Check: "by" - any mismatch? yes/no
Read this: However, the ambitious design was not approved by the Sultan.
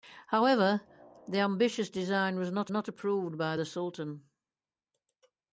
no